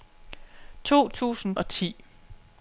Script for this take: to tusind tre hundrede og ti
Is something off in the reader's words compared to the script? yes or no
yes